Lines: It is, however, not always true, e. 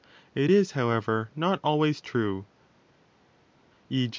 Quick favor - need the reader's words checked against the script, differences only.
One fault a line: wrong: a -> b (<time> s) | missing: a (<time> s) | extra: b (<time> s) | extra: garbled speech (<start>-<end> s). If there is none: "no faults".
no faults